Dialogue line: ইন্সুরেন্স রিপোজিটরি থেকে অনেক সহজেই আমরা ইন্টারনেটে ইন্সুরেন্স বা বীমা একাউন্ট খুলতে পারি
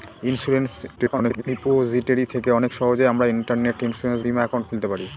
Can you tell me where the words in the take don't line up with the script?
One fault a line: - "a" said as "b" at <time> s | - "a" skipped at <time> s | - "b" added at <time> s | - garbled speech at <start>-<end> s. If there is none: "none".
- garbled speech at 1.0-1.4 s
- "বা" skipped at 4.2 s